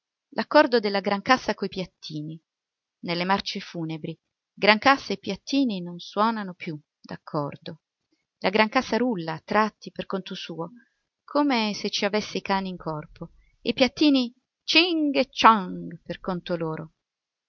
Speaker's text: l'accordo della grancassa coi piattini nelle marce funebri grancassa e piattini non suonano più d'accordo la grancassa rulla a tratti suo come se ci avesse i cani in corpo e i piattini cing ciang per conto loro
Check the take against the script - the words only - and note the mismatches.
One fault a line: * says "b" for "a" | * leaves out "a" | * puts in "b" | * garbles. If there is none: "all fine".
* puts in "per conto"
* puts in "e"